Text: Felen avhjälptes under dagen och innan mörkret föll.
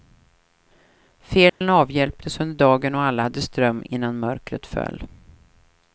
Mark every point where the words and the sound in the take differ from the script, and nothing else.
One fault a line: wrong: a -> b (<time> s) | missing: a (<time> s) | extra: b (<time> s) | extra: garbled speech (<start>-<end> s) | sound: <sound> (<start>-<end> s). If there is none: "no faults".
sound: dropout (1.5-1.6 s)
extra: alla hade ström (3.0 s)